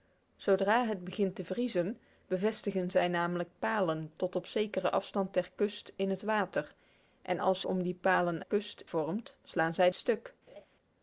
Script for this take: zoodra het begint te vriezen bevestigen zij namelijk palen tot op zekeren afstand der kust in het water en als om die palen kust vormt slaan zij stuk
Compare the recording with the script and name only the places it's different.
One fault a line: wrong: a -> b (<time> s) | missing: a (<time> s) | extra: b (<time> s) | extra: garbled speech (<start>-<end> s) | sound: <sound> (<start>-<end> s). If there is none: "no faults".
sound: laugh (10.5-10.7 s)